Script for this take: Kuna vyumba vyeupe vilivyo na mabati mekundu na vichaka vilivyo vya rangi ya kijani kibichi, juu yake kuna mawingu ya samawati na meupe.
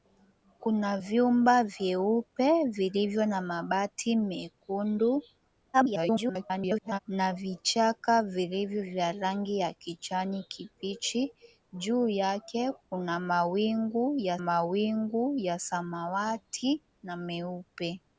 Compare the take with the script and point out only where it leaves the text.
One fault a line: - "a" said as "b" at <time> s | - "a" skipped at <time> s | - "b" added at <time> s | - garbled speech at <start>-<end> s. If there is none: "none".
- garbled speech at 5.7-7.0 s
- "mawingu ya" added at 14.4 s